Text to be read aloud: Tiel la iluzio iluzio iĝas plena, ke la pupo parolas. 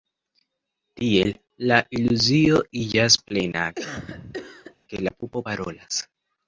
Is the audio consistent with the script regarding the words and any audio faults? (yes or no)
no